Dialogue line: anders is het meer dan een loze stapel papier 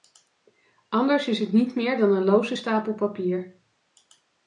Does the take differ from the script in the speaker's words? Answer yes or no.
yes